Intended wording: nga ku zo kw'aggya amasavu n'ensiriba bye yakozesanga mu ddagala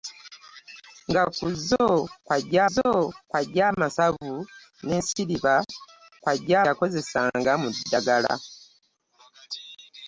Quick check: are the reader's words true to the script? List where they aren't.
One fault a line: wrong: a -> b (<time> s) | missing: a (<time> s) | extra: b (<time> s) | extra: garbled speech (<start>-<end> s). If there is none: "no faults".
extra: zo kw'aggya (2.7 s)
wrong: bye -> kw'aggya (6.2 s)